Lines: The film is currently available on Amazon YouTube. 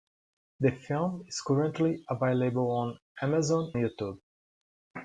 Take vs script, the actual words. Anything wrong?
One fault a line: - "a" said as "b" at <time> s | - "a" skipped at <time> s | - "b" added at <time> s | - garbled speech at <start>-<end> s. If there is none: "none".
none